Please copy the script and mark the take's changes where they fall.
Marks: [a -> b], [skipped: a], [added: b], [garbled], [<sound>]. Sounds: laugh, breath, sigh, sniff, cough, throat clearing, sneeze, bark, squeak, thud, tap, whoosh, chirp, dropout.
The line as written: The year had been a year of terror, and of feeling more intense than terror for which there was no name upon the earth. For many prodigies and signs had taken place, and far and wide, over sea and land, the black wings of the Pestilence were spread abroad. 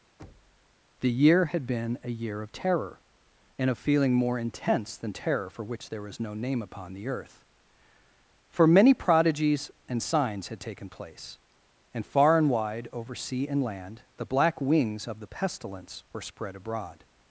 [thud] The year had been a year of terror, and of feeling more intense than terror for which there was no name upon the earth. For many prodigies and signs had taken place, and far and wide, over sea and land, the black wings of the Pestilence were spread abroad.